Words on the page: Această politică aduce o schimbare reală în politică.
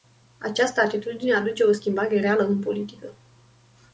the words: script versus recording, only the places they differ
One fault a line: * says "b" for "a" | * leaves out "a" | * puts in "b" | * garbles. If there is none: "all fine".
* says "atitudine" for "politică"